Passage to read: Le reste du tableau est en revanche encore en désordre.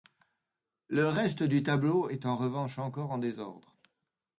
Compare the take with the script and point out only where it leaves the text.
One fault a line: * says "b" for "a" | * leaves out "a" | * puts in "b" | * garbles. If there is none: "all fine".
all fine